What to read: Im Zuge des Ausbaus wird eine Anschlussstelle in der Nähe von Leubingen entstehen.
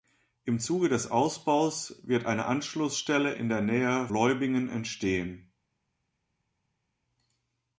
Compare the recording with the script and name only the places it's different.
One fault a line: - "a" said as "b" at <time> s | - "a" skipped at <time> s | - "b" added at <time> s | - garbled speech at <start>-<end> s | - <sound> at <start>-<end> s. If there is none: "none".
- "von" skipped at 4.1 s